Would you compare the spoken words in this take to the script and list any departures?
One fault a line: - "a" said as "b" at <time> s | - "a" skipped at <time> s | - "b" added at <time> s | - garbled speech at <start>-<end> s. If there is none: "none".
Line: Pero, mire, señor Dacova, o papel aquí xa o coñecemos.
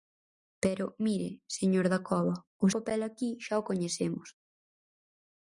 none